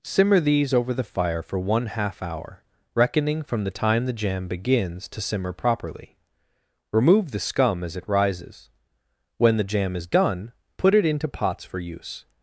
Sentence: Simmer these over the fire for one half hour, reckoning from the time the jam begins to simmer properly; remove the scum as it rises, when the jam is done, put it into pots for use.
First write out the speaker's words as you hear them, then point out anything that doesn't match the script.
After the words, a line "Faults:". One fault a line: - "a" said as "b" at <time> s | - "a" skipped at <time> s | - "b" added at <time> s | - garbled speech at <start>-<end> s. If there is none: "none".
Simmer these over the fire for one half hour, reckoning from the time the jam begins to simmer properly; remove the scum as it rises, when the jam is done, put it into pots for use.
Faults:
none